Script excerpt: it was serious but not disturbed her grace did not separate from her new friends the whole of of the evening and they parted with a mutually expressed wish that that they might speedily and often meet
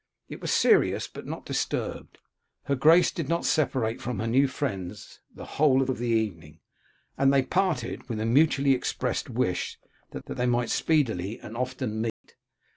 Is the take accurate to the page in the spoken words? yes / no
yes